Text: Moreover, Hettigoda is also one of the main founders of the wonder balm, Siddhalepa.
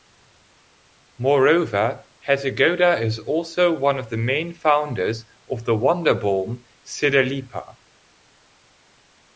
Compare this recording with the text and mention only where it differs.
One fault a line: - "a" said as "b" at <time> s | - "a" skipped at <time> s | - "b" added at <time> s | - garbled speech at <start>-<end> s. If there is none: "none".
none